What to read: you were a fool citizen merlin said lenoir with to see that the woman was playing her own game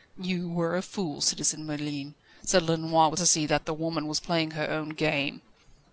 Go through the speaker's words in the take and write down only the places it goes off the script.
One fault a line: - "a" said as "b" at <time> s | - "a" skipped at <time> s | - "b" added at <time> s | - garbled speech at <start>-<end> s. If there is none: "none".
none